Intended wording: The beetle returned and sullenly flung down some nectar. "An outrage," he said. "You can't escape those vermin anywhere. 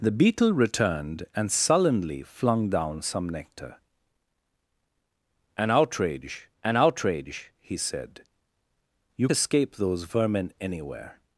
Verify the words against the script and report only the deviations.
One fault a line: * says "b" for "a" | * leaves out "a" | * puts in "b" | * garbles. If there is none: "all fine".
* puts in "an outrage"
* leaves out "can't"